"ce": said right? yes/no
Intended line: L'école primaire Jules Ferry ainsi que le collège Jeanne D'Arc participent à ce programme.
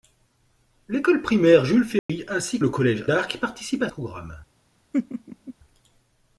no